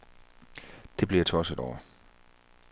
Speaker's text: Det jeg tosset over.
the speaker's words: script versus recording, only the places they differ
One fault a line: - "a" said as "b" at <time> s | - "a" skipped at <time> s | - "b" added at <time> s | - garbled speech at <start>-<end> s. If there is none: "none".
- "blev" added at 1.1 s